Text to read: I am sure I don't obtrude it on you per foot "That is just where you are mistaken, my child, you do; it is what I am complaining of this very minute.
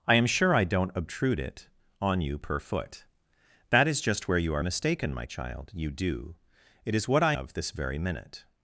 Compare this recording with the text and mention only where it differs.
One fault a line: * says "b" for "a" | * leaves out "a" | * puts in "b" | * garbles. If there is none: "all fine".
* leaves out "am complaining"